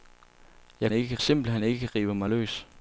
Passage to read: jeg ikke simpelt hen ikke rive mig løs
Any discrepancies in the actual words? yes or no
no